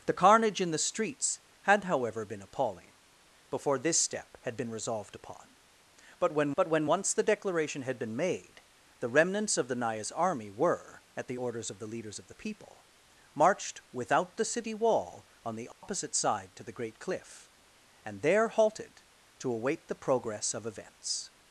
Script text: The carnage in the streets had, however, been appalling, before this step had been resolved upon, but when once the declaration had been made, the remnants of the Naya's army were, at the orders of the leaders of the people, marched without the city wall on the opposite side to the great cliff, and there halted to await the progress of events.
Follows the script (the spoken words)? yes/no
no